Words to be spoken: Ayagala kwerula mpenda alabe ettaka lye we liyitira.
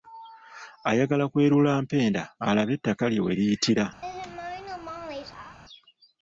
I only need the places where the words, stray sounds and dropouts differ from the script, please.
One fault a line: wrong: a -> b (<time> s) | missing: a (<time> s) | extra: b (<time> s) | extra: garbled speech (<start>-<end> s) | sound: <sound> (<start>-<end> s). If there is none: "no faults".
sound: laugh (4.0-5.6 s)